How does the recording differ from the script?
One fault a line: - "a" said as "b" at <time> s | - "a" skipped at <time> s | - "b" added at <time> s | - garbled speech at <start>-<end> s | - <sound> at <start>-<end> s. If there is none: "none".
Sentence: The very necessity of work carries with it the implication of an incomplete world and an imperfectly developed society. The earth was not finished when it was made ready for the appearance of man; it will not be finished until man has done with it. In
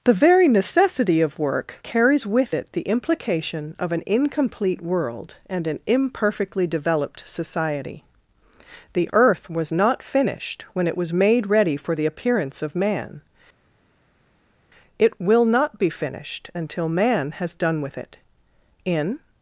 none